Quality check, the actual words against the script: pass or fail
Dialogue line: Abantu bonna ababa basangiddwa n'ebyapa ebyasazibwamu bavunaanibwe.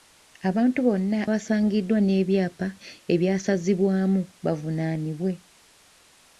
fail